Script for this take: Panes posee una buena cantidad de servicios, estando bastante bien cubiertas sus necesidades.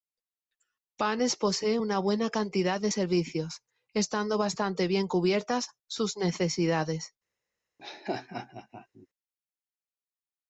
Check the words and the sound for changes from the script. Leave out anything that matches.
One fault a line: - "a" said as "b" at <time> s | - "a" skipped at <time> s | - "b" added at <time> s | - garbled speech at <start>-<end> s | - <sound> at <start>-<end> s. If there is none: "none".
- laugh at 7.8-9.1 s